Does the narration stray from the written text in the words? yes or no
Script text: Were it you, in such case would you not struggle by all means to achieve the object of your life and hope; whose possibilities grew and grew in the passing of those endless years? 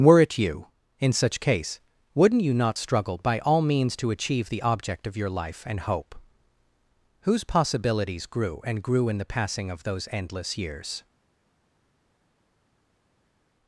yes